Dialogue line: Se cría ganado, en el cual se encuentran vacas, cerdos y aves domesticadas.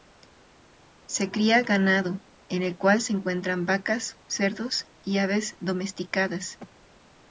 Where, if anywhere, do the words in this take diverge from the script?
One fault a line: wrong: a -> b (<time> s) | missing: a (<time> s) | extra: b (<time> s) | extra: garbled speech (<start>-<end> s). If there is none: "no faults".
no faults